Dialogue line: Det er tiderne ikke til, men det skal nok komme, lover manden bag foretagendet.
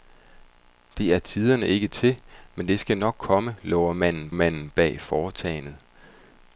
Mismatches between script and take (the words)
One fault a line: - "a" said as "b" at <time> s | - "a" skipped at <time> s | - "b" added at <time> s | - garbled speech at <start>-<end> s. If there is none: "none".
- "manden" added at 4.3 s